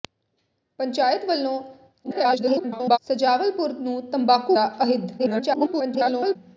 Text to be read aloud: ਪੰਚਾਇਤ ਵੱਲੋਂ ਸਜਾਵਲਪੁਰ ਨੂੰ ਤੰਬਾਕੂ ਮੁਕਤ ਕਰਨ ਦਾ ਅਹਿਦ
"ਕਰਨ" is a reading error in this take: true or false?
true